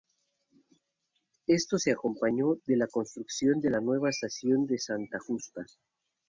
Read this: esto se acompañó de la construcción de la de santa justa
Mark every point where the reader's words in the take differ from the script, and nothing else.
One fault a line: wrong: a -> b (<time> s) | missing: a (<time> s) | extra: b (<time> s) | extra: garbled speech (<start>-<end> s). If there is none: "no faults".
extra: nueva estación (3.8 s)